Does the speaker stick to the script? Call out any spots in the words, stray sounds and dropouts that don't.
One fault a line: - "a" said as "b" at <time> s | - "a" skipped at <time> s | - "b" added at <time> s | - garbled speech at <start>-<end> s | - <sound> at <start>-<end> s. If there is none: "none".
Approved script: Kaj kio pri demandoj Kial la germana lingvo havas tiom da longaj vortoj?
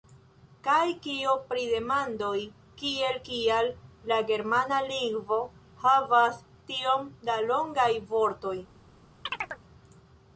- "kiel" added at 2.8 s
- chirp at 9.3-9.6 s